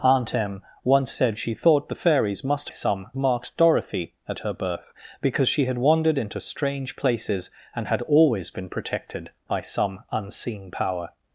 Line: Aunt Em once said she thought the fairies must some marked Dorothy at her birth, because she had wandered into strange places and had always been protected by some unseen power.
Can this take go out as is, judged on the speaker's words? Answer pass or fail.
pass